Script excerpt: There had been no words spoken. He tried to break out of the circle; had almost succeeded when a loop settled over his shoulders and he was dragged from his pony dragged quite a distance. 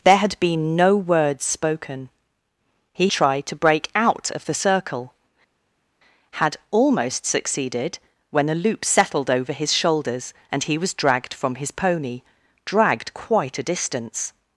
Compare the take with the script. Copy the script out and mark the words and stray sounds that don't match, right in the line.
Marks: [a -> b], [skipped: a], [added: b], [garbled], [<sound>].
There had been no words spoken. He tried to break out of the circle; had almost succeeded when a loop settled over his shoulders and he was dragged from his pony dragged quite a distance.